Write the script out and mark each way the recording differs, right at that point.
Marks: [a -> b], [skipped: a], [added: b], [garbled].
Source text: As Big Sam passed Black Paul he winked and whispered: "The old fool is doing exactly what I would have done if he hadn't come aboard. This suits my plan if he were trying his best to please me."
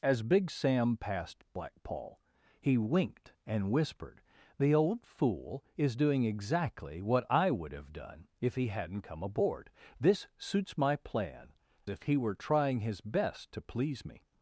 As Big Sam passed Black Paul he winked and whispered: "The old fool is doing exactly what I would have done if he hadn't come aboard. This suits my plan if he were trying his best to please me."